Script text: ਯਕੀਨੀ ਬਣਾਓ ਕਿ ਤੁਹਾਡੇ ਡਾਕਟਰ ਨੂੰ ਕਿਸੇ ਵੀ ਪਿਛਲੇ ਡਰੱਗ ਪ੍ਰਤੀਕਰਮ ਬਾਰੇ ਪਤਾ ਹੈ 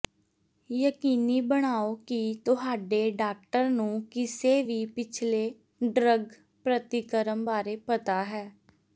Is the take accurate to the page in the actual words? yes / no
yes